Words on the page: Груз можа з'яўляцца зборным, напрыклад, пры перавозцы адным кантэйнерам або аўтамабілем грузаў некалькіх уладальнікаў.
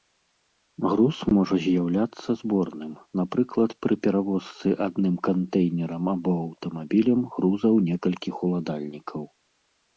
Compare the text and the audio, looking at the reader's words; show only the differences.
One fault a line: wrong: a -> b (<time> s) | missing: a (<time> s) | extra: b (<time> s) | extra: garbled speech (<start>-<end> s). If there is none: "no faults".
no faults